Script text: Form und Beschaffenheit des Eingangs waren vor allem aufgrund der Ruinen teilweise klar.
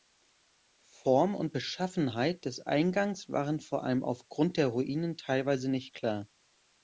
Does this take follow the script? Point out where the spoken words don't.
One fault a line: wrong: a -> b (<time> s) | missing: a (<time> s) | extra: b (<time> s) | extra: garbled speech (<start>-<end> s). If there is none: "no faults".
extra: nicht (5.7 s)